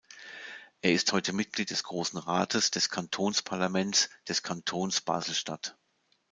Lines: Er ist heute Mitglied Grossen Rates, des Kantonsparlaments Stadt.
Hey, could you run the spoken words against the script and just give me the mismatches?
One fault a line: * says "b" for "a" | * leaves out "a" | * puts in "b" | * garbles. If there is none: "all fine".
* puts in "des"
* puts in "des Kantons Basel"